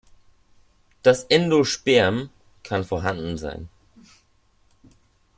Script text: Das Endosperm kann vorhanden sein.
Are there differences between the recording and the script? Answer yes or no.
no